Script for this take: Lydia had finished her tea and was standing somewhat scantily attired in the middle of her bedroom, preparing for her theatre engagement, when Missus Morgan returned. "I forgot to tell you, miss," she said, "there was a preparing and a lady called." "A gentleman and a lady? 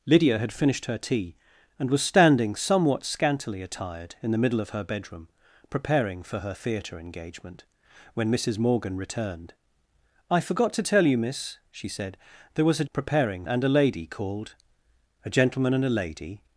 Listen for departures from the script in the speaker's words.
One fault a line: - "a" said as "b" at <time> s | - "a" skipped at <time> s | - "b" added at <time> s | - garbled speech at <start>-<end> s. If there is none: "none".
none